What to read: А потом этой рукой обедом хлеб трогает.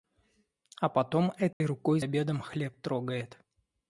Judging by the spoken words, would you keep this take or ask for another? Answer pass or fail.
pass